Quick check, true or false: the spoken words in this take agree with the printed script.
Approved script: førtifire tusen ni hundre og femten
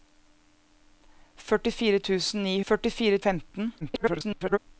false